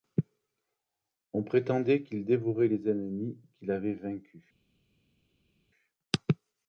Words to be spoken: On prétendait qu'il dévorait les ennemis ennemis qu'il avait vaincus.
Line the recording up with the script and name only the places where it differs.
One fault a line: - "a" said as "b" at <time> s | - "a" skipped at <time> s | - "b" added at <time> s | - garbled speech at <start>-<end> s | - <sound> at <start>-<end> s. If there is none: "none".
- "ennemis" skipped at 3.4 s